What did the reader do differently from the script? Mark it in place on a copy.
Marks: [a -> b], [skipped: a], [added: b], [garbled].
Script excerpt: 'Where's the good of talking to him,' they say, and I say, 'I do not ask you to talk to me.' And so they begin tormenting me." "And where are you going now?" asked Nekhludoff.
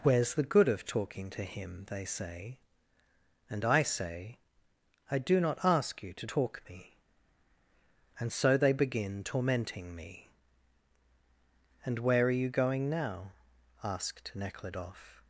'Where's the good of talking to him,' they say, and I say, 'I do not ask you to talk [skipped: to] me.' And so they begin tormenting me." "And where are you going now?" asked Nekhludoff.